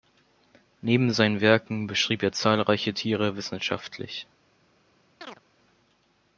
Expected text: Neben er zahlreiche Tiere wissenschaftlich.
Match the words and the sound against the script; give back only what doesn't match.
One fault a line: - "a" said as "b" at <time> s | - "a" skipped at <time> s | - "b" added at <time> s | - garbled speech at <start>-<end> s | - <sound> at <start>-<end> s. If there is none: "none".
- "seinen Werken beschrieb" added at 1.1 s
- chirp at 5.2-5.4 s